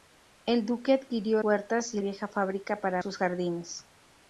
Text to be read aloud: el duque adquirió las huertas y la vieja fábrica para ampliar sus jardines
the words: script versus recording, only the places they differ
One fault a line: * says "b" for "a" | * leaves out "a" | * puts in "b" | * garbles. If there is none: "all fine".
* leaves out "las"
* leaves out "la"
* leaves out "ampliar"